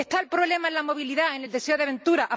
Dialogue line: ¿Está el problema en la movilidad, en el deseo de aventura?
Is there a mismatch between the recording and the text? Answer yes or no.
no